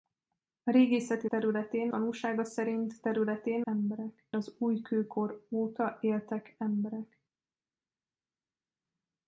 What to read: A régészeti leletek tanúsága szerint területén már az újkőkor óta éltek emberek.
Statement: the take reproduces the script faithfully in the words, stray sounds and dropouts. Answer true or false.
false